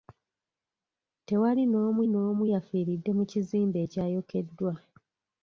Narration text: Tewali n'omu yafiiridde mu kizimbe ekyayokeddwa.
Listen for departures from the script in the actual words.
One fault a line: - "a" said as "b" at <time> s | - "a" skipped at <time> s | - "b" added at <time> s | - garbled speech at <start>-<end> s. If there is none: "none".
- "n'omu" added at 2.1 s